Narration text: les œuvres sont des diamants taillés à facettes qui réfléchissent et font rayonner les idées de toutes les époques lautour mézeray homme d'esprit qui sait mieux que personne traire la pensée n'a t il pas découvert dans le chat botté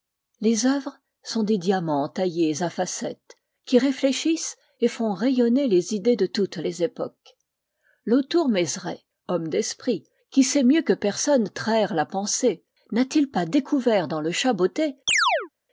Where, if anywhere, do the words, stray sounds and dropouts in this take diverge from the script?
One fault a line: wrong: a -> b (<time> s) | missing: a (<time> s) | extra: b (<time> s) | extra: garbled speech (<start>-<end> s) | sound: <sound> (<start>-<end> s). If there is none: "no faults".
sound: chirp (15.1-15.5 s)